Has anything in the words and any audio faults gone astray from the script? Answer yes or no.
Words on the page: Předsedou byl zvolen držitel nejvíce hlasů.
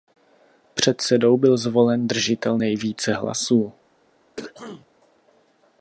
yes